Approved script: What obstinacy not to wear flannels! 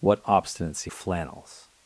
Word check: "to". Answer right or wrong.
wrong